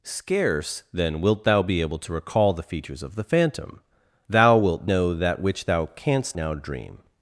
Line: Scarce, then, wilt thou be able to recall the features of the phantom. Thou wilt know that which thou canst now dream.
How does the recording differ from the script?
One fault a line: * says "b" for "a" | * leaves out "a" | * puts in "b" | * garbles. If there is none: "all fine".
all fine